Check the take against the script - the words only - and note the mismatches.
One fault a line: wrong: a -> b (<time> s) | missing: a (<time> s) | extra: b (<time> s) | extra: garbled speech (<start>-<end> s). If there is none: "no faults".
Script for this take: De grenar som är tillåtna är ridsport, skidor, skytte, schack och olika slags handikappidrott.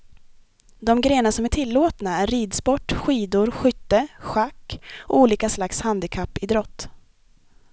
no faults